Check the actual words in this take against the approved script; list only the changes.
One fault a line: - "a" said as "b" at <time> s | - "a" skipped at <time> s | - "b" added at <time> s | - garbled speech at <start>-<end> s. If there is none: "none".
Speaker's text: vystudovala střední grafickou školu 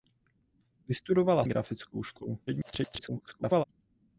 - "střední" skipped at 1.4 s
- garbled speech at 2.5-3.6 s